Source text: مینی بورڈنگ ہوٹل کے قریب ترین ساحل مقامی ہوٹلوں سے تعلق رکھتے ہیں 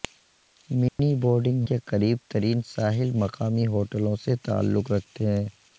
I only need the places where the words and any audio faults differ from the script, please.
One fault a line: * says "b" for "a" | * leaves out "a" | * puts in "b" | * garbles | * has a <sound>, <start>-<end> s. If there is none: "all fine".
* has a dropout, 0.9-1.0 s
* leaves out "ہوٹل"